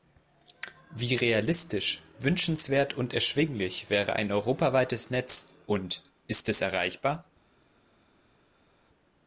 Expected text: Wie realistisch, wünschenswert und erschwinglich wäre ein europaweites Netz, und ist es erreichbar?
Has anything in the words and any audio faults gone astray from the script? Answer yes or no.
no